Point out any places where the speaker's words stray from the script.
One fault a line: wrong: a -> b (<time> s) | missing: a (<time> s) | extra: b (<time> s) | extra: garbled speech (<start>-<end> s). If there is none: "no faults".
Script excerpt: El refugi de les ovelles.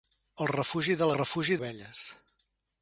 wrong: les -> refugi (1.1 s)